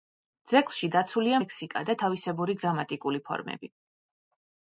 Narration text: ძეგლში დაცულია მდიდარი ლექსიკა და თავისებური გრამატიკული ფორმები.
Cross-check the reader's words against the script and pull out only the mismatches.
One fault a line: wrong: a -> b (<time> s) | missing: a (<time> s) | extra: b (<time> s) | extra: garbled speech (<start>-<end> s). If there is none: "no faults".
missing: მდიდარი (1.4 s)